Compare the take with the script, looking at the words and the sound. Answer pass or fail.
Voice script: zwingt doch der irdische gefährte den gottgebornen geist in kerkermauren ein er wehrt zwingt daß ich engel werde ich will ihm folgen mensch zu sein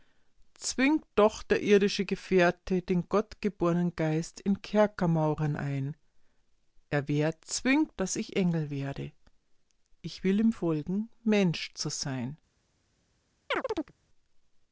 fail